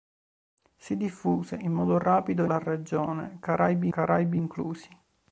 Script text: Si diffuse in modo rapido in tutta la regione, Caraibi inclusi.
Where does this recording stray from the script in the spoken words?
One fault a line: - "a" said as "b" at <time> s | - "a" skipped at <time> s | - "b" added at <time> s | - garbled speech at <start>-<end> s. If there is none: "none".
- "in tutta" skipped at 2.5 s
- "Caraibi" added at 3.9 s